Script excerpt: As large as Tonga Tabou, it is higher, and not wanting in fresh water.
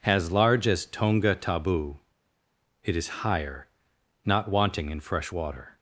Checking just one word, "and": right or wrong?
wrong